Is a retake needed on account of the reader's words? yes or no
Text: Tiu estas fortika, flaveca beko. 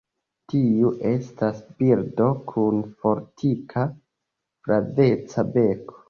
yes